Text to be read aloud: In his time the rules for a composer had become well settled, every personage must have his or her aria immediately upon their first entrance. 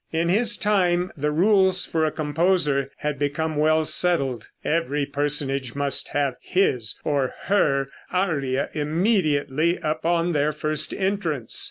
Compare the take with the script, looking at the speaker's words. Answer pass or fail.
pass